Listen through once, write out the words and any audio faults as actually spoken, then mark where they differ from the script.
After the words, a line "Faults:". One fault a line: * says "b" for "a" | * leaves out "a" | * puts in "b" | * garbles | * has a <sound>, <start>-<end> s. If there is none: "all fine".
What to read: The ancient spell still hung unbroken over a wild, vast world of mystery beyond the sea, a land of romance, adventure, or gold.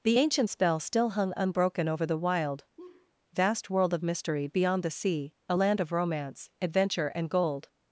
The ancient spell still hung unbroken over the wild, vast world of mystery beyond the sea, a land of romance, adventure, and gold.
Faults:
* says "the" for "a"
* has a laugh, 2.8-3.1 s
* says "and" for "or"